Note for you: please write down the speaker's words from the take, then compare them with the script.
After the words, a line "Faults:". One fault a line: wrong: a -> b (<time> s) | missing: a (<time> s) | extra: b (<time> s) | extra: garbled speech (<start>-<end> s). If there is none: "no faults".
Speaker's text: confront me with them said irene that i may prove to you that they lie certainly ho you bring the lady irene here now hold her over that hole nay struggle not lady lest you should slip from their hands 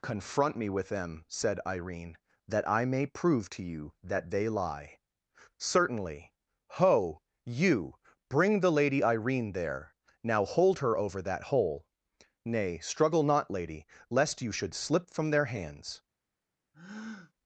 confront me with them said irene that i may prove to you that they lie certainly ho you bring the lady irene there now hold her over that hole nay struggle not lady lest you should slip from their hands
Faults:
wrong: here -> there (9.5 s)